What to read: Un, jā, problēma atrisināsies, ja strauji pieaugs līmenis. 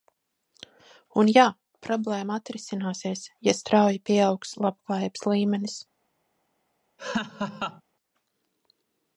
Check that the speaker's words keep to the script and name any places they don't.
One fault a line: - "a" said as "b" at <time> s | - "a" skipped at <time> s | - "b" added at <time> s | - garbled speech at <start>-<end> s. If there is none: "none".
- "labklājības" added at 4.7 s